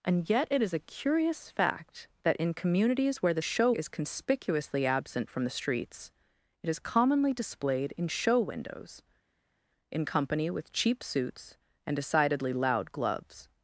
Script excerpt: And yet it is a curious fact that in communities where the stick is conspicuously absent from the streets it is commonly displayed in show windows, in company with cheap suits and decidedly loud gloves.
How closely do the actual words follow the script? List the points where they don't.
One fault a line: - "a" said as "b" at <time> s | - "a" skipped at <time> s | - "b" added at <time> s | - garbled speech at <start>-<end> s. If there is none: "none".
- "stick" said as "show" at 3.4 s